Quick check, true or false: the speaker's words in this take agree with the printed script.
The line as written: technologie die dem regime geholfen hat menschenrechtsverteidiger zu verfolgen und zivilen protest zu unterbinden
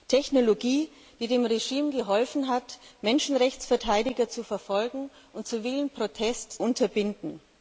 false